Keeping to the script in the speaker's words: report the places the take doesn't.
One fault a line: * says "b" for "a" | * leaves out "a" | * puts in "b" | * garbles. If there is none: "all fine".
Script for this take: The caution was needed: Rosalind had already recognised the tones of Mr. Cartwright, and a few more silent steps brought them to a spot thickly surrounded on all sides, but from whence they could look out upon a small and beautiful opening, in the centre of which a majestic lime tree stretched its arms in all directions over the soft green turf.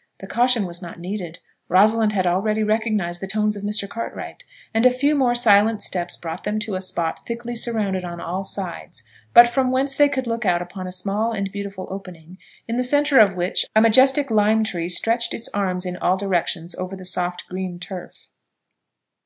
* puts in "not"